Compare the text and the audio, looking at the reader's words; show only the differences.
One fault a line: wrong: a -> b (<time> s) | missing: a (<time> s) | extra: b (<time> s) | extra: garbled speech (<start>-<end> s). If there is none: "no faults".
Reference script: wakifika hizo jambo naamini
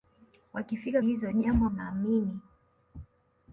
no faults